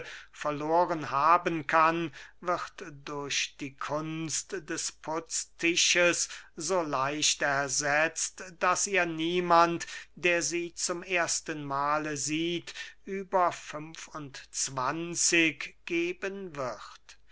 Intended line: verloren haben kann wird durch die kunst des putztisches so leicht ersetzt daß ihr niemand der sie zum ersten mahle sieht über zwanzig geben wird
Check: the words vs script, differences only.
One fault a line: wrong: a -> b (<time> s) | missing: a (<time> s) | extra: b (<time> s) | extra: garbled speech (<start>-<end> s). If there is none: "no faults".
extra: fünf und (13.5 s)